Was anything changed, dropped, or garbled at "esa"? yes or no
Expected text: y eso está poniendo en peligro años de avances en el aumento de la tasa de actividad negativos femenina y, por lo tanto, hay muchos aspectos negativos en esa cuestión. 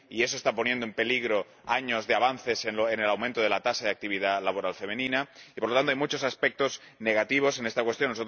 yes